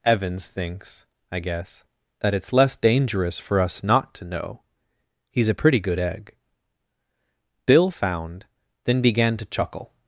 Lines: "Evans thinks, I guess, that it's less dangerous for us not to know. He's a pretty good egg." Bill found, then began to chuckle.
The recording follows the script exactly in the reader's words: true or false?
true